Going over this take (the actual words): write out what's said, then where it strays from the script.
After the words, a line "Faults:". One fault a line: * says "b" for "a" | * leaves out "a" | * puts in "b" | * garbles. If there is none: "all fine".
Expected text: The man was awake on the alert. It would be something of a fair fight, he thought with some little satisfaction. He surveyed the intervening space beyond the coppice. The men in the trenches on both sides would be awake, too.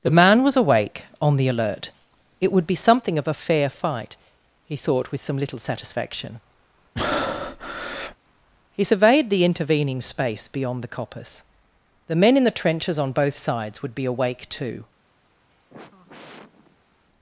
The man was awake on the alert. It would be something of a fair fight, he thought with some little satisfaction. He surveyed the intervening space beyond the coppice. The men in the trenches on both sides would be awake, too.
Faults:
all fine